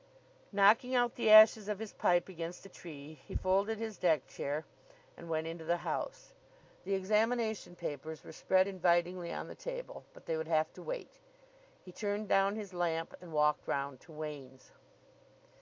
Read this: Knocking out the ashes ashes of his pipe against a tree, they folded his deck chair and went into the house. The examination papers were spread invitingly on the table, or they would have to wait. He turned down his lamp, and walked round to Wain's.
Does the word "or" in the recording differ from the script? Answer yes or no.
yes